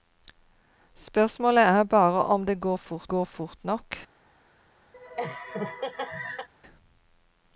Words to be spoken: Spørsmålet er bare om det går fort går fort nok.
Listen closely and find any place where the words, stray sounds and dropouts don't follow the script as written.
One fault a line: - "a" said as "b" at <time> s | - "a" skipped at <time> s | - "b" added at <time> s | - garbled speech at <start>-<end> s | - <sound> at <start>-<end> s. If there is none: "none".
- laugh at 4.9-6.5 s